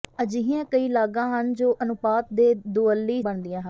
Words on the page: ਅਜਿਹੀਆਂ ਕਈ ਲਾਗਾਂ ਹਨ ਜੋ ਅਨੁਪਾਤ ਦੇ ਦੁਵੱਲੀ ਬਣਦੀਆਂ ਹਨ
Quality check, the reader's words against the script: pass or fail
pass